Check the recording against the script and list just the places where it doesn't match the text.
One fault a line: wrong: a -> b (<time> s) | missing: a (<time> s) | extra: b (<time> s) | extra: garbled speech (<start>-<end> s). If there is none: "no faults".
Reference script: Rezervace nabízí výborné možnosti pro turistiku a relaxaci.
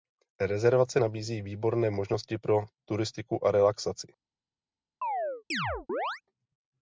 no faults